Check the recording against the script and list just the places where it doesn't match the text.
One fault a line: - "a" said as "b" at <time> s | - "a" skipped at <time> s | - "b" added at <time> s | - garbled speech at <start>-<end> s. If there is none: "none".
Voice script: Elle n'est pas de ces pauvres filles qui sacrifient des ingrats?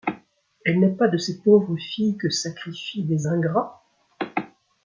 - "qui" said as "que" at 2.2 s